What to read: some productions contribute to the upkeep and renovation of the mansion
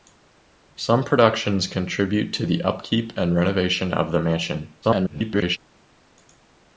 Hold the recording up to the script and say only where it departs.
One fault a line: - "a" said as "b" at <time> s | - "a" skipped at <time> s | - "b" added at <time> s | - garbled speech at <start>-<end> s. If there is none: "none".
- garbled speech at 4.8-5.6 s